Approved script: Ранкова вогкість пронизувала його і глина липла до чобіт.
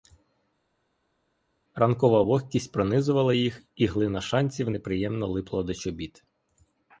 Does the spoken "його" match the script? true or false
false